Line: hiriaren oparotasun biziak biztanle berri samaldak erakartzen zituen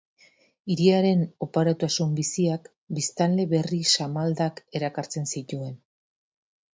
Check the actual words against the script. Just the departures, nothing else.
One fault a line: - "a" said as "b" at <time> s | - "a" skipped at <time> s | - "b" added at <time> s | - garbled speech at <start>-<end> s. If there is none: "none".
none